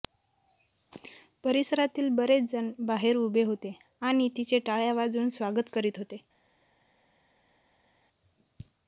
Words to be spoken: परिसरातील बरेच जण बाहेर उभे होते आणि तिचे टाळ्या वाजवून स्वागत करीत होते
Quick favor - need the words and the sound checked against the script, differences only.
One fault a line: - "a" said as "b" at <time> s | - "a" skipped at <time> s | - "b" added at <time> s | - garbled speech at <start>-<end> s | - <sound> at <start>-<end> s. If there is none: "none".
none